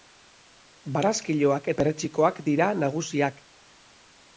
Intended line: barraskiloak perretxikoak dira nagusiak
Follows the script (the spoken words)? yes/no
yes